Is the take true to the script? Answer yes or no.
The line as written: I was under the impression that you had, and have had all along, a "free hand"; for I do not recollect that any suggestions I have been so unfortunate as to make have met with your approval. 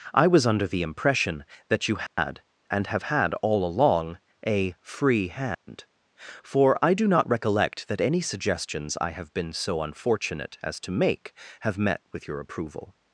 yes